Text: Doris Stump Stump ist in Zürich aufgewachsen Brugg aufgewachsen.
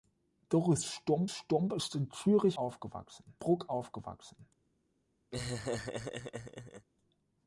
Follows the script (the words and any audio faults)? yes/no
no